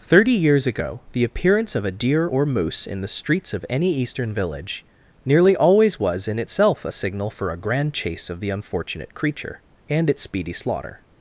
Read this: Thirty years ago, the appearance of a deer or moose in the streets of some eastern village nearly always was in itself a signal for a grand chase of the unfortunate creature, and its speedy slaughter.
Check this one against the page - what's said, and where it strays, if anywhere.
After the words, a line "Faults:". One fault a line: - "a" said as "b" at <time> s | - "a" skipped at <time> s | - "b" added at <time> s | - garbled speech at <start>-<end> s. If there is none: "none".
Thirty years ago, the appearance of a deer or moose in the streets of any eastern village nearly always was in itself a signal for a grand chase of the unfortunate creature, and its speedy slaughter.
Faults:
- "some" said as "any" at 3.7 s